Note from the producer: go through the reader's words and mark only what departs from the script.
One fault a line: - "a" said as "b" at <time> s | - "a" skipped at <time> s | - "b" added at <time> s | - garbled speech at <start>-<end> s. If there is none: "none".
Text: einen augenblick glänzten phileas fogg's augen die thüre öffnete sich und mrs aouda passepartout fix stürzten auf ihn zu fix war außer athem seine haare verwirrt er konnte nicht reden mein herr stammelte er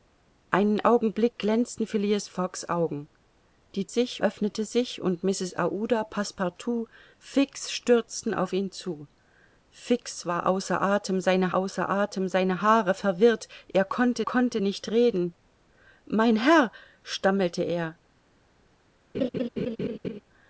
- "thüre" said as "sich" at 3.9 s
- "außer athem seine" added at 11.5 s
- "konnte" added at 14.2 s